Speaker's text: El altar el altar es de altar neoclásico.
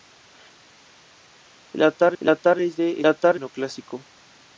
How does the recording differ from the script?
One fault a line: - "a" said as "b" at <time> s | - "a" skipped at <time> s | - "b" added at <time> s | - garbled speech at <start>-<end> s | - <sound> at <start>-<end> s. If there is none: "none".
none